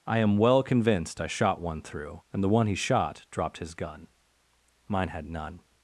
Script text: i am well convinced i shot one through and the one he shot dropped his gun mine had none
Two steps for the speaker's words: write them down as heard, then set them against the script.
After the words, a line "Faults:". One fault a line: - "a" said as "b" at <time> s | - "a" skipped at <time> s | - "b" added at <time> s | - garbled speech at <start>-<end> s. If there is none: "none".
i am well convinced i shot one through and the one he shot dropped his gun mine had none
Faults:
none